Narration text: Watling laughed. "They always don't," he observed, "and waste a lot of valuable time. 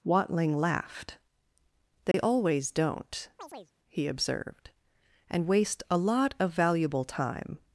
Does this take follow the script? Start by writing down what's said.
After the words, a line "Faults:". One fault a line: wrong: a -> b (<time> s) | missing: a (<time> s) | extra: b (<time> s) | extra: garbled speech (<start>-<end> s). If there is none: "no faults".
Watling laughed. "They always don't," he observed, "and waste a lot of valuable time.
Faults:
no faults